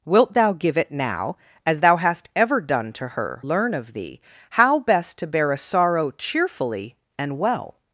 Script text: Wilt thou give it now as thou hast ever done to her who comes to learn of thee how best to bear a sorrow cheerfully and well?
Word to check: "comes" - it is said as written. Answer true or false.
false